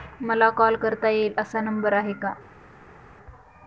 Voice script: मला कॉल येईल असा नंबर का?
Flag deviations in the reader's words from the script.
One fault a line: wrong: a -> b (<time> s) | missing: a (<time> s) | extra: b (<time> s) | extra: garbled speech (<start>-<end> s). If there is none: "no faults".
extra: करता (0.7 s)
extra: आहे (1.9 s)